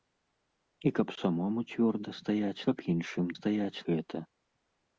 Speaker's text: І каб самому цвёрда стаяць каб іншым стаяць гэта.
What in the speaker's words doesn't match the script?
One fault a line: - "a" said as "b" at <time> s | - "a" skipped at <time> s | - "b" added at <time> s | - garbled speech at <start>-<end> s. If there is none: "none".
none